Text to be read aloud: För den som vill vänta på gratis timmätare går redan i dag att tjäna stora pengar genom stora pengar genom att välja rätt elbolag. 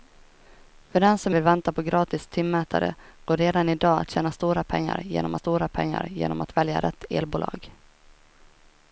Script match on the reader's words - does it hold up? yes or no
yes